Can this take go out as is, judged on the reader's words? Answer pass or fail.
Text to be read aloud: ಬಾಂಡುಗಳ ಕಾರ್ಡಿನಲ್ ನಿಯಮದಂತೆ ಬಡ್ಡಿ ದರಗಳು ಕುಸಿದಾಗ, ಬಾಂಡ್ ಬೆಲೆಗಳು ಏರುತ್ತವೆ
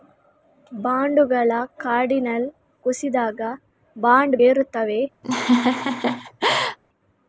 fail